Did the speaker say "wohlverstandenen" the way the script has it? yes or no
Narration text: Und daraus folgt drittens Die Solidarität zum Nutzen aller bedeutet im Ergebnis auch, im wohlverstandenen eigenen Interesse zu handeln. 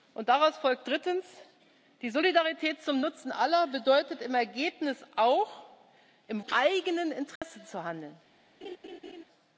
no